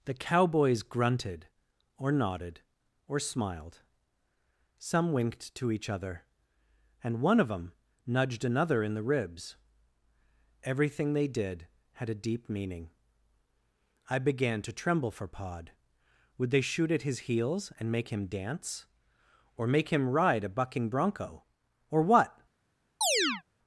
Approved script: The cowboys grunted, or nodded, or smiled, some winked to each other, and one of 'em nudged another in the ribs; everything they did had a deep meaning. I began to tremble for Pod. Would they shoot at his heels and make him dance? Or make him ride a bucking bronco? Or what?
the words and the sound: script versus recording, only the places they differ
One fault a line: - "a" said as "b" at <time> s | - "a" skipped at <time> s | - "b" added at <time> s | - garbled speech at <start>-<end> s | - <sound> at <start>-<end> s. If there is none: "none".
- "em" said as "them" at 7.5 s
- chirp at 23.0-23.4 s